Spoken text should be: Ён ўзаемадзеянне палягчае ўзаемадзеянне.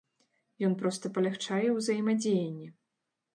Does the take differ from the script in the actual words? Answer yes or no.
yes